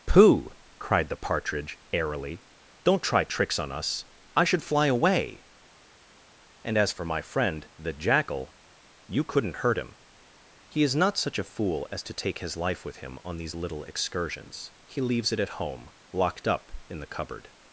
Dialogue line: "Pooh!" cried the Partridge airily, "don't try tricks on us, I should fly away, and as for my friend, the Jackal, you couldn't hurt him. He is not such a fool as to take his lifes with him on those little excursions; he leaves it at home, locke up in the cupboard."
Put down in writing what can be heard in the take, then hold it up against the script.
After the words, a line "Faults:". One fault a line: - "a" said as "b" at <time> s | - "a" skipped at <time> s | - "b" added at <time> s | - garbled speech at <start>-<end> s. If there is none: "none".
"Pooh!" cried the Partridge airily, "don't try tricks on us, I should fly away, and as for my friend, the Jackal, you couldn't hurt him. He is not such a fool as to take his life with him on these little excursions; he leaves it at home, locked up in the cupboard."
Faults:
- "lifes" said as "life" at 12.6 s
- "those" said as "these" at 13.4 s
- "locke" said as "locked" at 16.1 s